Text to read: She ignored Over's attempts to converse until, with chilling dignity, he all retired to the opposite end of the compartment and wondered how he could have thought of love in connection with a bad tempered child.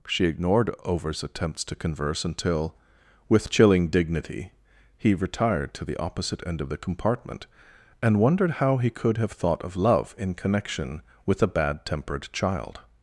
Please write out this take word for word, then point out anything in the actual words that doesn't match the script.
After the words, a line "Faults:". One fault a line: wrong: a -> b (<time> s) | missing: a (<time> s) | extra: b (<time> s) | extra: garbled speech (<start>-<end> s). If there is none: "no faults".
She ignored Over's attempts to converse until, with chilling dignity, he retired to the opposite end of the compartment and wondered how he could have thought of love in connection with a bad tempered child.
Faults:
missing: all (5.1 s)